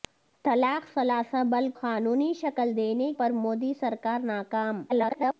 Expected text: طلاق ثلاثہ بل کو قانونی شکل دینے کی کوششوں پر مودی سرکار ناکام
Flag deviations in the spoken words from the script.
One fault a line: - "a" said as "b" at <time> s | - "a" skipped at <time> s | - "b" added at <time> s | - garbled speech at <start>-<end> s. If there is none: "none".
- "کو" skipped at 1.7 s
- "کی کوششوں" skipped at 3.1 s
- garbled speech at 4.9-5.3 s